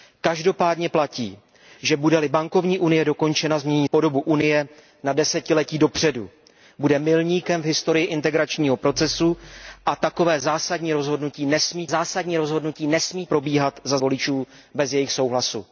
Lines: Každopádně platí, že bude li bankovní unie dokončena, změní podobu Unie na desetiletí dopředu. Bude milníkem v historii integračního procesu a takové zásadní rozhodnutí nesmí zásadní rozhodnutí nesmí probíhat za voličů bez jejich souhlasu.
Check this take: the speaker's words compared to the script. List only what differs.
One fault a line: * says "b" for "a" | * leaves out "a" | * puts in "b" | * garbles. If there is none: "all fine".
all fine